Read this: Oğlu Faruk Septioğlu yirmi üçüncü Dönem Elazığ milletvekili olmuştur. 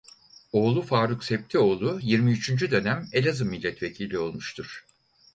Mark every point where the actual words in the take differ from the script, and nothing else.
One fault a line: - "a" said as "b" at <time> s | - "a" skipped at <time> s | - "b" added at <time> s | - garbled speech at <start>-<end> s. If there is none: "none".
none